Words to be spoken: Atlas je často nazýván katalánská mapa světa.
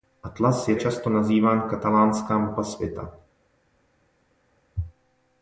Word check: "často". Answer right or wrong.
right